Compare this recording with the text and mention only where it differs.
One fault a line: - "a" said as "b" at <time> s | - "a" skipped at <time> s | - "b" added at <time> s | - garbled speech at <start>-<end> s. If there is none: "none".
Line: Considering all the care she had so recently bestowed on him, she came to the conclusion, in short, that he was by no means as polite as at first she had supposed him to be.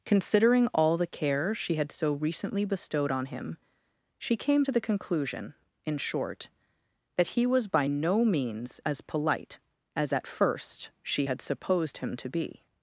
none